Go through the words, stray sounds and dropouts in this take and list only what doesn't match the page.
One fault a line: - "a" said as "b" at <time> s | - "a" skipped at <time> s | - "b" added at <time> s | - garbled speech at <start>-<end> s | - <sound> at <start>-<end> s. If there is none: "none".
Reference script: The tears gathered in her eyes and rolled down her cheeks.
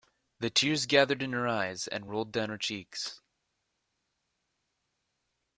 none